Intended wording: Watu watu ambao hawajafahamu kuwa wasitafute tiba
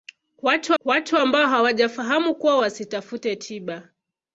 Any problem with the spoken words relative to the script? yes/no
no